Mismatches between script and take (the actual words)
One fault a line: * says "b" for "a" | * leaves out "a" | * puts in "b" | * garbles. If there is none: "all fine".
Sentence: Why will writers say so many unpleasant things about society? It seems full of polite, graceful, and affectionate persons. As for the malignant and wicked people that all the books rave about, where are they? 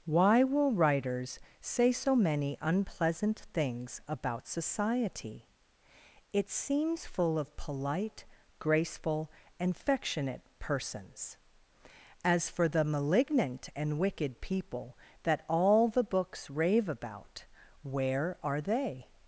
all fine